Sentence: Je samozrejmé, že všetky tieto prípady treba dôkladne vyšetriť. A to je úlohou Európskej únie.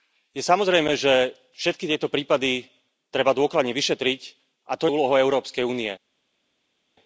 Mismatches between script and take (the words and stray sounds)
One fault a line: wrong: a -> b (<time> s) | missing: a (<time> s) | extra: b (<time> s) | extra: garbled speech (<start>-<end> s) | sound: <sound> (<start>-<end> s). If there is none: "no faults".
no faults